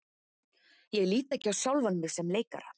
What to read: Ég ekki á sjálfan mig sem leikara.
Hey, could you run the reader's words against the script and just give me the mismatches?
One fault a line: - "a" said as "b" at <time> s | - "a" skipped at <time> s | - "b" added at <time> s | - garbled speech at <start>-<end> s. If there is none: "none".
- "lít" added at 1.1 s